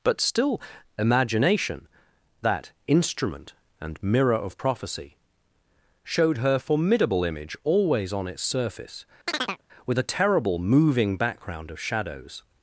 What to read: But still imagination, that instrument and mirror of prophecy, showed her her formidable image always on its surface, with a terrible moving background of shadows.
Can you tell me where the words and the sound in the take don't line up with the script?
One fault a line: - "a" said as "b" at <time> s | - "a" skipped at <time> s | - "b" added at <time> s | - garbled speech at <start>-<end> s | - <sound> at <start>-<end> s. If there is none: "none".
- "her" skipped at 6.6 s
- chirp at 9.3-9.6 s